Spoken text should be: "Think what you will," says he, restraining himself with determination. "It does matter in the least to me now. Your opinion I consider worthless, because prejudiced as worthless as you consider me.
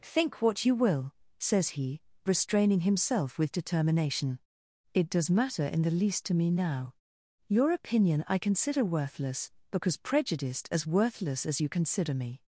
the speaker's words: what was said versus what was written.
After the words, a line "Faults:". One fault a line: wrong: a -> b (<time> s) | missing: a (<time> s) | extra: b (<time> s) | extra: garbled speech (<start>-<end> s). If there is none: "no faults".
"Think what you will," says he, restraining himself with determination. "It does matter in the least to me now. Your opinion I consider worthless, because prejudiced as worthless as you consider me.
Faults:
no faults